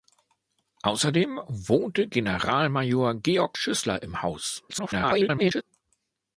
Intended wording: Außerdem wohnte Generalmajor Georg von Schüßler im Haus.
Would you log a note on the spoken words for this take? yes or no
yes